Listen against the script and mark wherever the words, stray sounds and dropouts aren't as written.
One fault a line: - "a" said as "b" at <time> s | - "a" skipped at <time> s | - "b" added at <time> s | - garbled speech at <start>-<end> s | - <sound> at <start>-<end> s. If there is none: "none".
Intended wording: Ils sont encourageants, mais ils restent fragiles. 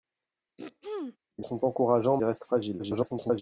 - throat clearing at 0.6-1.2 s
- "mais" skipped at 2.2 s
- garbled speech at 2.8-3.4 s